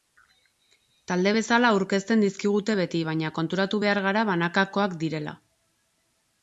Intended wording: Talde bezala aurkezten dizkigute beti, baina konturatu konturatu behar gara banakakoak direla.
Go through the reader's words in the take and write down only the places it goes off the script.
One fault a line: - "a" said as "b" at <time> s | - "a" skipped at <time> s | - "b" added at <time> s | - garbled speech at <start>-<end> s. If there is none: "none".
- "konturatu" skipped at 3.8 s